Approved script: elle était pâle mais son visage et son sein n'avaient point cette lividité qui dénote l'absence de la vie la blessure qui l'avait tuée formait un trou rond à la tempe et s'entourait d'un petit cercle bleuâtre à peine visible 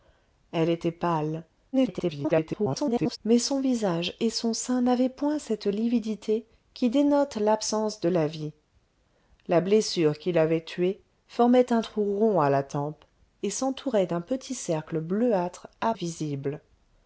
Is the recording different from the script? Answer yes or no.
yes